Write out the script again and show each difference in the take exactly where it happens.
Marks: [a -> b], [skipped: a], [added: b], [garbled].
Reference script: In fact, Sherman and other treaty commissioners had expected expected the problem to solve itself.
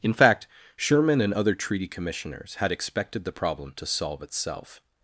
In fact, Sherman and other treaty commissioners had expected [skipped: expected] the problem to solve itself.